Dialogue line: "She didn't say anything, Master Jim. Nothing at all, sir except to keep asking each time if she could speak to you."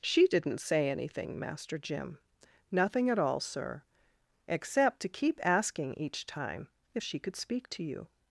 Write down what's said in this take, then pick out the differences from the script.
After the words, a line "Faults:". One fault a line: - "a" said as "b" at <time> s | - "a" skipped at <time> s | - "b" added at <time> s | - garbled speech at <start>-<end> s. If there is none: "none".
"She didn't say anything, Master Jim. Nothing at all, sir except to keep asking each time if she could speak to you."
Faults:
none